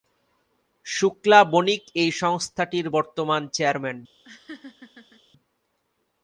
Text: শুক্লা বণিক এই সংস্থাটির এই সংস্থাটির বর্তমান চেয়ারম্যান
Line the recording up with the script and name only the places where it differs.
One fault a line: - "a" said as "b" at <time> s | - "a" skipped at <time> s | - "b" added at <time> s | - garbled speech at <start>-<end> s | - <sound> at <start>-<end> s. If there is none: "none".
- "এই সংস্থাটির" skipped at 2.9 s
- laugh at 4.2-5.2 s